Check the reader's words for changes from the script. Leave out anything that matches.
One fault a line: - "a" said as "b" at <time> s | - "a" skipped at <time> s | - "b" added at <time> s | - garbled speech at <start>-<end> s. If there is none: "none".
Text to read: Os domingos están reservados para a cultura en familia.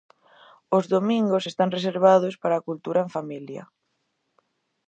none